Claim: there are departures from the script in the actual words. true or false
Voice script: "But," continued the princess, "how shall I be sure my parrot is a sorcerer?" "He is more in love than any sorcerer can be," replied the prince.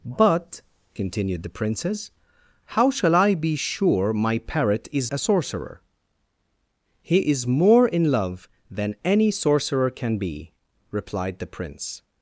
false